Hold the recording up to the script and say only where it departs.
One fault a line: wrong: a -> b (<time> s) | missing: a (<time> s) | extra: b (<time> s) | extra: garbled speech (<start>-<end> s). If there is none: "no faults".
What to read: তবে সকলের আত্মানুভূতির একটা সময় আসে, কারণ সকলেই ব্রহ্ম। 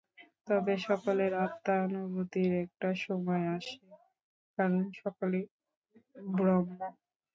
no faults